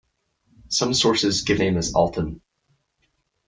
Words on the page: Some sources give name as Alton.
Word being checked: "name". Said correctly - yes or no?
yes